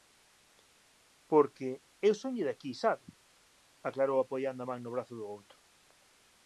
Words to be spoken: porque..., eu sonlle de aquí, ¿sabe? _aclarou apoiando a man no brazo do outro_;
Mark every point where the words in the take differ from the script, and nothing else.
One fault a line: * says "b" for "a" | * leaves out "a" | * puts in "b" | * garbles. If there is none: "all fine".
all fine